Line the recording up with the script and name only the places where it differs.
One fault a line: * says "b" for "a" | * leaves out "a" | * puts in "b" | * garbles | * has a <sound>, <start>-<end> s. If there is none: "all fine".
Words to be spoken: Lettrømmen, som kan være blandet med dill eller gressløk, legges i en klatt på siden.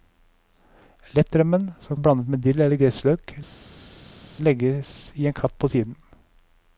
* leaves out "kan"